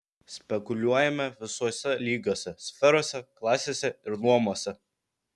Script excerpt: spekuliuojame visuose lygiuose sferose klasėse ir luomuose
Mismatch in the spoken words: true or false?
false